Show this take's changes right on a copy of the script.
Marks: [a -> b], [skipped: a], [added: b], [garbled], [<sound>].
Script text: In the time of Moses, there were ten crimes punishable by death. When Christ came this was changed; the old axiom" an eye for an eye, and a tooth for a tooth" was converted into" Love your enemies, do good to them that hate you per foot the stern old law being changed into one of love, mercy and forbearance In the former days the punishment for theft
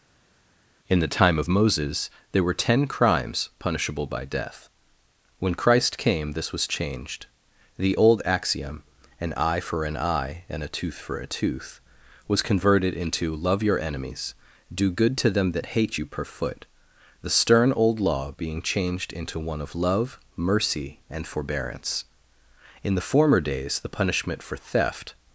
In the time of Moses, there were ten crimes punishable by death. When Christ came this was changed; the old axiom" an eye for an eye, and a tooth for a tooth" was converted into" Love your enemies, do good to them that hate you per foot the stern old law being changed into one of love, mercy and forbearance In the former days the punishment for theft